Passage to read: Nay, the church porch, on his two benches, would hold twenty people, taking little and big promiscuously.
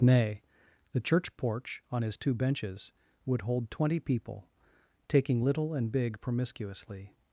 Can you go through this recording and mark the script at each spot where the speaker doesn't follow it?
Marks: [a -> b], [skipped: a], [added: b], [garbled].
Nay, the church porch, on his two benches, would hold twenty people, taking little and big promiscuously.